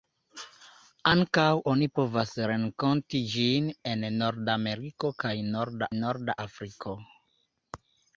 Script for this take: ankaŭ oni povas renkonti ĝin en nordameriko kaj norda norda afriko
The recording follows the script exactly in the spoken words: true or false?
true